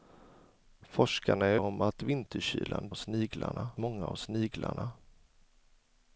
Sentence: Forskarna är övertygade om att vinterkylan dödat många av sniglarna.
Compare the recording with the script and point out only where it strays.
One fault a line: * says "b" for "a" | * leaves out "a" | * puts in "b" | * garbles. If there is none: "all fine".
* leaves out "övertygade"
* says "sniglarna" for "dödat"